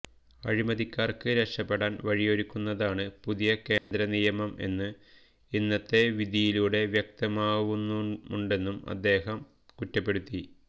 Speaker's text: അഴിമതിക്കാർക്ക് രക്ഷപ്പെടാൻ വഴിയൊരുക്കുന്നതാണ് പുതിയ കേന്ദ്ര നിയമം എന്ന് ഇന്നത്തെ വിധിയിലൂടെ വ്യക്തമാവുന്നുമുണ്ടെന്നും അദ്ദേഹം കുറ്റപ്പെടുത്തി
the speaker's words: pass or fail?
pass